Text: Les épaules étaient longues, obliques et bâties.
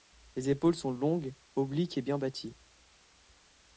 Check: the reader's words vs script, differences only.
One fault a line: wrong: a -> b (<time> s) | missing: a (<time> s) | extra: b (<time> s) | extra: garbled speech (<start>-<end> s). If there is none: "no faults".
wrong: étaient -> sont (0.7 s)
extra: bien (2.0 s)